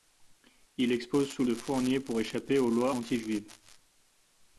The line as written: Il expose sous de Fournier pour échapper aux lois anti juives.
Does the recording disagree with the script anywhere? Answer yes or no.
no